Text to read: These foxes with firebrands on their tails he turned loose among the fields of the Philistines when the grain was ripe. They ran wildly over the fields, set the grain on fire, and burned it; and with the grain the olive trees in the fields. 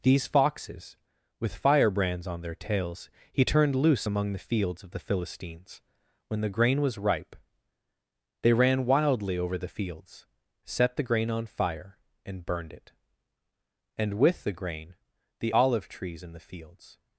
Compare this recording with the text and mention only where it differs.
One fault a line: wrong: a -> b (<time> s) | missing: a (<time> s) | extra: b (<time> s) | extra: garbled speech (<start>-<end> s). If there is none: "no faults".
no faults